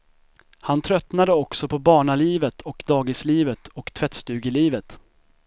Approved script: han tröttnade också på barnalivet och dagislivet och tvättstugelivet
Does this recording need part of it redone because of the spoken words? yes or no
no